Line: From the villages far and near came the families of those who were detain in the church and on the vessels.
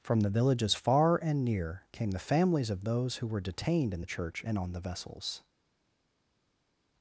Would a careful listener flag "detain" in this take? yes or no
yes